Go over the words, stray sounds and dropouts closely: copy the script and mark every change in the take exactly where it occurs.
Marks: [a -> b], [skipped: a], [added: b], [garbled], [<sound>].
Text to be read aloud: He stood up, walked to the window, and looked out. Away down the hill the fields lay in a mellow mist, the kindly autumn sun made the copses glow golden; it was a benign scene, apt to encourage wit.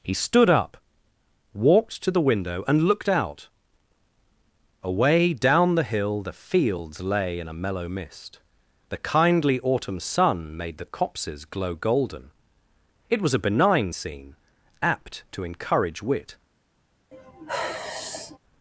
He stood up, walked to the window, and looked out. Away down the hill the fields lay in a mellow mist, the kindly autumn sun made the copses glow golden; it was a benign scene, apt to encourage wit. [sigh]